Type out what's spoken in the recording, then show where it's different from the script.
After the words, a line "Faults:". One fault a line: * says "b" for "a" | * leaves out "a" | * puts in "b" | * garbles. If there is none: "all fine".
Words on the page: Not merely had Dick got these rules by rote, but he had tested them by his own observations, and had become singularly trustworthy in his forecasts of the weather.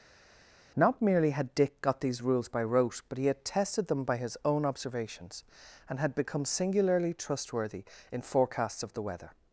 Not merely had Dick got these rules by rote, but he had tested them by his own observations, and had become singularly trustworthy in forecasts of the weather.
Faults:
* leaves out "his"